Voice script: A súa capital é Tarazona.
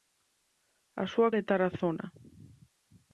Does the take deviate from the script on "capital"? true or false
true